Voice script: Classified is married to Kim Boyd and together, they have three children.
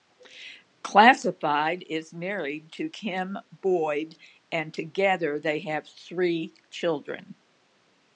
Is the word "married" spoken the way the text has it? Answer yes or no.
yes